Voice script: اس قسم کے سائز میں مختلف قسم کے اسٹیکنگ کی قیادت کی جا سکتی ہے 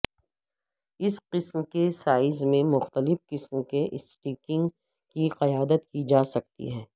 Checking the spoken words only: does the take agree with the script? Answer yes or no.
yes